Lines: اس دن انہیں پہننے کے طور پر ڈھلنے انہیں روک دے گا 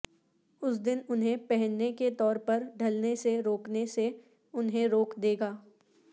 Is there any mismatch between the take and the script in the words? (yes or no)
yes